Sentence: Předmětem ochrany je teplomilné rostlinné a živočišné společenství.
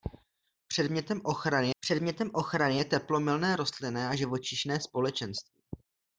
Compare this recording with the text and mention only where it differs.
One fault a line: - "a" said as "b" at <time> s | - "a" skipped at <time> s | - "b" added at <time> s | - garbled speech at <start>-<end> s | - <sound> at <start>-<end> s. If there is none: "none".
- "předmětem ochrany" added at 1.8 s